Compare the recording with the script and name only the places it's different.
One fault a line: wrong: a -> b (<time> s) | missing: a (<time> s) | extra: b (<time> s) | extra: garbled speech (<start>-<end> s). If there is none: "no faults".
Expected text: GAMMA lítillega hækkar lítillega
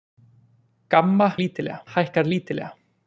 no faults